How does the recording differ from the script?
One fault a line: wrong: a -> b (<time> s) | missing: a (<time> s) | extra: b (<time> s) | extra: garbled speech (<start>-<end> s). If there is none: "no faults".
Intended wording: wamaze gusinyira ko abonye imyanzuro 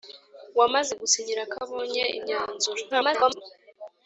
extra: garbled speech (2.9-3.4 s)